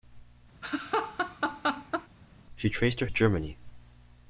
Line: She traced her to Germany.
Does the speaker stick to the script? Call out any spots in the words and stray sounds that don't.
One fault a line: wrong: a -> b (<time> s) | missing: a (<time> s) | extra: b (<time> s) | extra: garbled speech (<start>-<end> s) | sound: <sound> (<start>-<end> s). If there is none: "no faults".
sound: laugh (0.6-2.1 s)